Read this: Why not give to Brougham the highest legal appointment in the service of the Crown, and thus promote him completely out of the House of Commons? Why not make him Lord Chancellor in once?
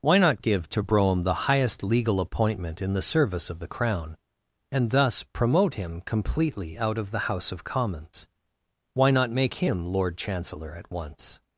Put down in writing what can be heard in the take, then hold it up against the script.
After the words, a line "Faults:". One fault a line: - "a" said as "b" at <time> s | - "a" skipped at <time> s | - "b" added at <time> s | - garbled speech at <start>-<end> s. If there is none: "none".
Why not give to Brougham the highest legal appointment in the service of the Crown, and thus promote him completely out of the House of Commons? Why not make him Lord Chancellor at once?
Faults:
- "in" said as "at" at 10.7 s